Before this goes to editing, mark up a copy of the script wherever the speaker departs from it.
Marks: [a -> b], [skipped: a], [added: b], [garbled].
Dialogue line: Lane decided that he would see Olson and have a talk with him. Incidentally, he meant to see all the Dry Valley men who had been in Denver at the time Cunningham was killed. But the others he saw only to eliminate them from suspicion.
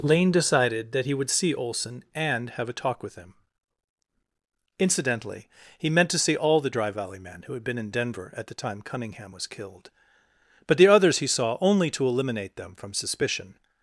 Lane decided that he would see Olson and have a talk with him. Incidentally, he meant to see all the Dry Valley men who had been in Denver at the time Cunningham was killed. But the others he saw only to eliminate them from suspicion.